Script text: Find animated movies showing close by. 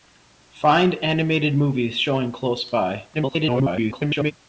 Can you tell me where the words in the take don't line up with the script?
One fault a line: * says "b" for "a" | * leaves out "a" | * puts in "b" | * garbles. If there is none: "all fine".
* garbles